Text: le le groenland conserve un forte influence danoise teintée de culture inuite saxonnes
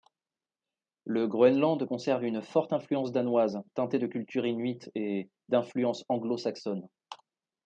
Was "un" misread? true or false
true